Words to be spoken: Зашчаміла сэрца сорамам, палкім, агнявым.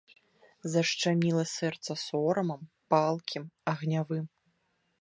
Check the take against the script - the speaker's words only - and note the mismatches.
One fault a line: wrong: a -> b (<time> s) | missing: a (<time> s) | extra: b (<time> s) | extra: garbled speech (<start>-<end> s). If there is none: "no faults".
no faults